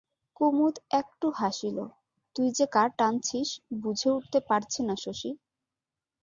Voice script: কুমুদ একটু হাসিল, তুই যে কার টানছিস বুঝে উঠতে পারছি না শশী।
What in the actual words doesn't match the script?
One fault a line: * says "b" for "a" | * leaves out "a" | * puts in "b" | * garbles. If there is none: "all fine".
all fine